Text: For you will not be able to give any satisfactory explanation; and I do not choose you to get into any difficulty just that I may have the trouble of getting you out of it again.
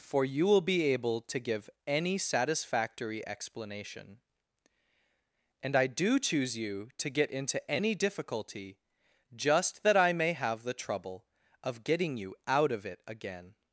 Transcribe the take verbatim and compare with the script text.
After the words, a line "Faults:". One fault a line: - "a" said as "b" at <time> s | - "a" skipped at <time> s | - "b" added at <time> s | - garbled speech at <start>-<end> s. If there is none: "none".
For you will be able to give any satisfactory explanation; and I do choose you to get into any difficulty just that I may have the trouble of getting you out of it again.
Faults:
- "not" skipped at 0.6 s
- "not" skipped at 6.2 s